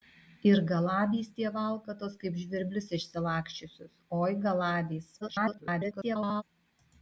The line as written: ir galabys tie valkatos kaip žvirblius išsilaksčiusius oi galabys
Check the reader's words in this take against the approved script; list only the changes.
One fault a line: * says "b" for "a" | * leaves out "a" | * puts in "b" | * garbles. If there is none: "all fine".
* garbles